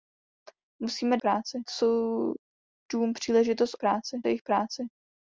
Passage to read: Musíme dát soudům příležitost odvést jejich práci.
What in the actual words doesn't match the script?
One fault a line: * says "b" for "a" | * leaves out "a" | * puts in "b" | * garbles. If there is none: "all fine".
* says "práci" for "dát"
* says "práci" for "odvést"